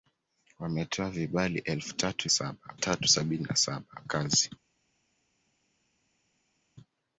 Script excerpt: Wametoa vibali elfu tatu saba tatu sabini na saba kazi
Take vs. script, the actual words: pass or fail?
pass